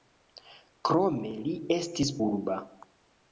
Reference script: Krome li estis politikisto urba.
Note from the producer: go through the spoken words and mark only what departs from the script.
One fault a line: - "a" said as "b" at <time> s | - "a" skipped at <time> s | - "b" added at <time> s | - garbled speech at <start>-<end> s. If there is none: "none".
- "politikisto" skipped at 2.1 s